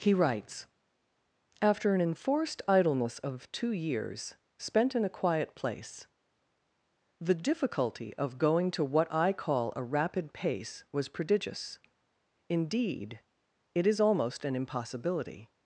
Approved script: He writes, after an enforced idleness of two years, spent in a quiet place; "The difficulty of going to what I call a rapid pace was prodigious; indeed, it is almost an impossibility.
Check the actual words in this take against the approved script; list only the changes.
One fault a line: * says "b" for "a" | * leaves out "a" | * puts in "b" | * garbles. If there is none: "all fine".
all fine